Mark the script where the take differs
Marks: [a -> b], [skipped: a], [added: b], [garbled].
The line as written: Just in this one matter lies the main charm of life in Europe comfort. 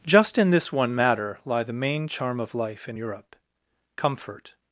Just in this one matter [lies -> lie] the main charm of life in Europe comfort.